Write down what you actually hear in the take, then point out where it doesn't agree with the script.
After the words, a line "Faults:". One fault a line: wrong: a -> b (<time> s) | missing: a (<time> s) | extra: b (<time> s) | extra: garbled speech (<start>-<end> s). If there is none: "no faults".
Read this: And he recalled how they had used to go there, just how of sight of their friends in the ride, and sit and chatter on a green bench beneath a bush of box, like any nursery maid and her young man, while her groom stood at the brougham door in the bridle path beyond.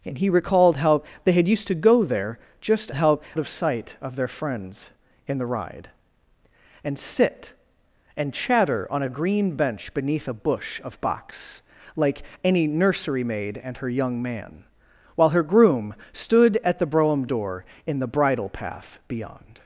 And he recalled how they had used to go there, just how of sight of their friends in the ride, and sit and chatter on a green bench beneath a bush of box, like any nursery maid and her young man, while her groom stood at the brougham door in the bridle path beyond.
Faults:
no faults